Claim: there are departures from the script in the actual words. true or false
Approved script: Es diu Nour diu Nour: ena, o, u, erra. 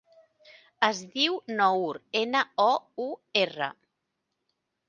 true